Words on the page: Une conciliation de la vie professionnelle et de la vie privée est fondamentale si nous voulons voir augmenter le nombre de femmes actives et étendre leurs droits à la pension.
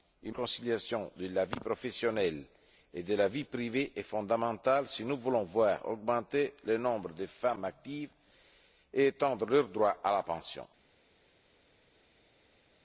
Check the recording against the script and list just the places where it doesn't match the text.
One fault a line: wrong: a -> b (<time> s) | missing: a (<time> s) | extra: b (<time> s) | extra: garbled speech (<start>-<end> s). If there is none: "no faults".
no faults